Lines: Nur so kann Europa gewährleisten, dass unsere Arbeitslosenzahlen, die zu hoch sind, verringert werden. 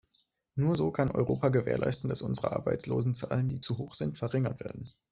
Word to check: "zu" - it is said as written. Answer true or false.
true